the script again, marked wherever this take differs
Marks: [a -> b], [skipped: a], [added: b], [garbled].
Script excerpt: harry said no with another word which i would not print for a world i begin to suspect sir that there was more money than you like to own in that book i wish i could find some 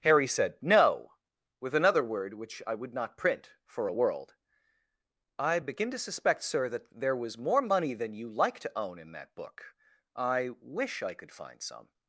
harry said no with another word which i would not print for a world i begin to suspect sir that there was more money than you like to own in that book i wish i could find some